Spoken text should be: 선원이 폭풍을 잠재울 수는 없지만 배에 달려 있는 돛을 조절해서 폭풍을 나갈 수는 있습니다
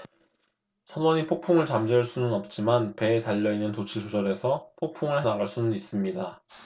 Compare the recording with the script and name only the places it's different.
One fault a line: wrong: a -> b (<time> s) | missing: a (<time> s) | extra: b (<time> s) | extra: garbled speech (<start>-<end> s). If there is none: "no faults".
no faults